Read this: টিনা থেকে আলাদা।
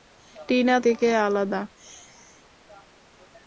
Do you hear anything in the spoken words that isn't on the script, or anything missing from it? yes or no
no